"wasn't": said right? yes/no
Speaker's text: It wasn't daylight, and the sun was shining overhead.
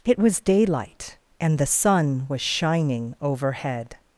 no